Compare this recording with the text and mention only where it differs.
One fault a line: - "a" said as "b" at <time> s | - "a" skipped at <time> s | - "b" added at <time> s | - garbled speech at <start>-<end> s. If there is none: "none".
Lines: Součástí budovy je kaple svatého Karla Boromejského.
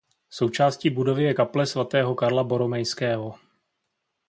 none